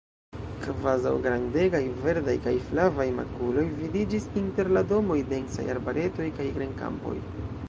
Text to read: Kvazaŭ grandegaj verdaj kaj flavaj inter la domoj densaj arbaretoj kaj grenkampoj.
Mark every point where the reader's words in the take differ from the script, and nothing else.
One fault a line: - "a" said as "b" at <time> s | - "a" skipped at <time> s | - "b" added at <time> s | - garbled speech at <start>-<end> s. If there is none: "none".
- "makuloj vidiĝis" added at 3.2 s